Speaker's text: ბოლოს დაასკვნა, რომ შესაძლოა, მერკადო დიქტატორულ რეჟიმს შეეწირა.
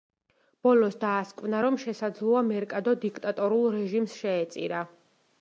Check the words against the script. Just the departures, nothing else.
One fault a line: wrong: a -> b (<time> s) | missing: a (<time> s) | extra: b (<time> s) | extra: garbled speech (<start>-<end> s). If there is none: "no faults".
no faults